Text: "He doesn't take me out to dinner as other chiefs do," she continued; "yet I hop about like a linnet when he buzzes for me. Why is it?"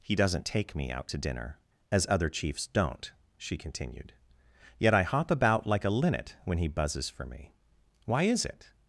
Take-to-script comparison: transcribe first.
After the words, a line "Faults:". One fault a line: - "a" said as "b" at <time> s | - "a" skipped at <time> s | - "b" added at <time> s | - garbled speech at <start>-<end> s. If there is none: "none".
"He doesn't take me out to dinner as other chiefs don't," she continued; "yet I hop about like a linnet when he buzzes for me. Why is it?"
Faults:
- "do" said as "don't" at 2.7 s